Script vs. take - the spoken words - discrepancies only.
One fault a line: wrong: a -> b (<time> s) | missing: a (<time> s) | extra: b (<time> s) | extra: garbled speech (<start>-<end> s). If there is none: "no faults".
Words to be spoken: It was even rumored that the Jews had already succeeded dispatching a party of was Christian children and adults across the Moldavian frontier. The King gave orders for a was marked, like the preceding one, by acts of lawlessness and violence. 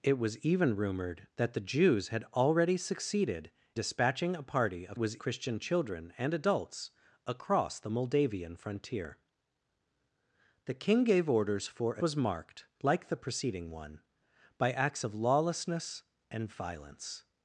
no faults